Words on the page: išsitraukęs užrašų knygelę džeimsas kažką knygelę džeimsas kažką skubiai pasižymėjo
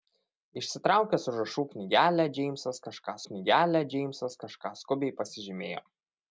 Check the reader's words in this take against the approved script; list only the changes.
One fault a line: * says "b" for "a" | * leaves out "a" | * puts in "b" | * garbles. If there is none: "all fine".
all fine